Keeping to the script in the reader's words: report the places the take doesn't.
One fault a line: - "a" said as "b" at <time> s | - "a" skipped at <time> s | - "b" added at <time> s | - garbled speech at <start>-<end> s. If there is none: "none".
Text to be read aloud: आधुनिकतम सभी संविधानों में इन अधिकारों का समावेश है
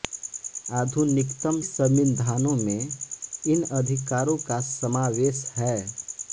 - "सभी" skipped at 1.6 s